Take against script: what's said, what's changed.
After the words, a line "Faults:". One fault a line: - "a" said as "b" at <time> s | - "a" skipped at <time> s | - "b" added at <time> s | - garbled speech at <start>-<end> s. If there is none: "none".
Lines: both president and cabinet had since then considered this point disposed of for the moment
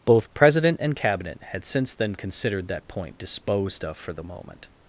both president and cabinet had since then considered that point disposed of for the moment
Faults:
- "this" said as "that" at 2.7 s